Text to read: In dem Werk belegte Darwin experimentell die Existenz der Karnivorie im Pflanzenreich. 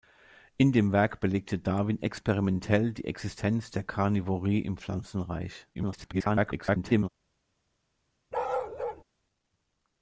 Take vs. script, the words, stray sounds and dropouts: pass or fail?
fail